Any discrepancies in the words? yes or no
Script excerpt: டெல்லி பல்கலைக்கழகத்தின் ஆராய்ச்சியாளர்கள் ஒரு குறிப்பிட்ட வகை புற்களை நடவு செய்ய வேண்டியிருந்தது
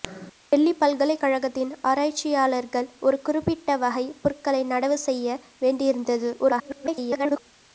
yes